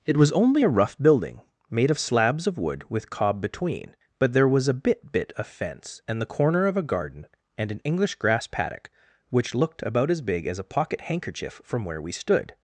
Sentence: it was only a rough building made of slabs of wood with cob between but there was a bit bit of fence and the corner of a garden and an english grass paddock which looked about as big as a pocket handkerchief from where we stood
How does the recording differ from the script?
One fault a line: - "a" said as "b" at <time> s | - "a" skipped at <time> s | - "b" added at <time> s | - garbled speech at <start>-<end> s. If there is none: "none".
none